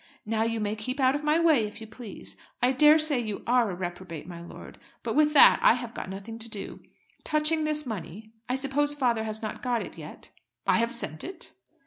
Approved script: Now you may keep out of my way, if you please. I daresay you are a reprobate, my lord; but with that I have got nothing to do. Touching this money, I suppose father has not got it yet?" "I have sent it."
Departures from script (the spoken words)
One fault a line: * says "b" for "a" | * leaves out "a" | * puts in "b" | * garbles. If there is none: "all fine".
all fine